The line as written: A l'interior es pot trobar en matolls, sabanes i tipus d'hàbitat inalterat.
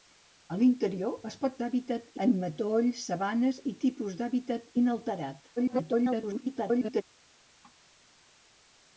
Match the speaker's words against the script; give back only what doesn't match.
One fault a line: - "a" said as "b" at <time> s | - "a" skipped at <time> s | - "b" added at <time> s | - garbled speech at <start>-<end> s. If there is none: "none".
- "trobar" said as "d'hàbitat" at 1.6 s
- garbled speech at 5.6-7.0 s